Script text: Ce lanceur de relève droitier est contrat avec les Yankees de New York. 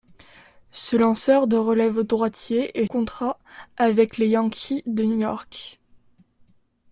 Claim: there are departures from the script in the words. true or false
false